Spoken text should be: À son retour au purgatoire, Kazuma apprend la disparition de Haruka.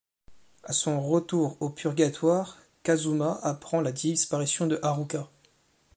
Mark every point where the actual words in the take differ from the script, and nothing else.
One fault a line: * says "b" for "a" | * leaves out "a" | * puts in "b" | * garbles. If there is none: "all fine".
all fine